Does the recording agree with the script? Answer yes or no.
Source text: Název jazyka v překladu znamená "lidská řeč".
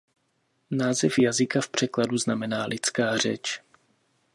yes